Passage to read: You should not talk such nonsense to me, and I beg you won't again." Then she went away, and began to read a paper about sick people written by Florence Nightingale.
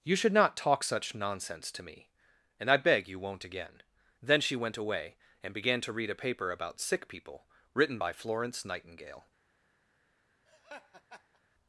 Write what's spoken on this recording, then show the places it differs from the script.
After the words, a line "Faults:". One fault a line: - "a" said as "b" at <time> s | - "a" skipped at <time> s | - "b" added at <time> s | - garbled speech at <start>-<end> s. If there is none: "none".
You should not talk such nonsense to me, and I beg you won't again." Then she went away, and began to read a paper about sick people written by Florence Nightingale.
Faults:
none